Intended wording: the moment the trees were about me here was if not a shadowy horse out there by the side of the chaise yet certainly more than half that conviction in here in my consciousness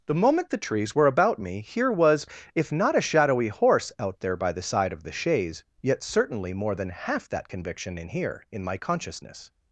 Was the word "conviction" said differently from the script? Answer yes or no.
no